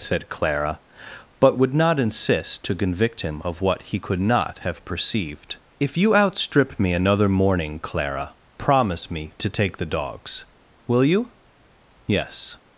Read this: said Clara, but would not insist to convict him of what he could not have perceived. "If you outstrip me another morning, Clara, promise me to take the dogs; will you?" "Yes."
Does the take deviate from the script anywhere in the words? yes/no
no